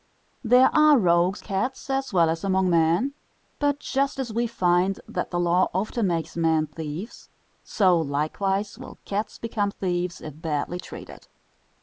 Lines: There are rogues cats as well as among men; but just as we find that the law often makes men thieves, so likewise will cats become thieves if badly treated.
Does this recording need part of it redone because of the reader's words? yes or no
no